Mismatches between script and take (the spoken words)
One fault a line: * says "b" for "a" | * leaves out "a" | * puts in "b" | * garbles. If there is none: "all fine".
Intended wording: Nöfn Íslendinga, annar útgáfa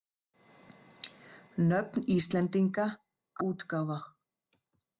* leaves out "annar"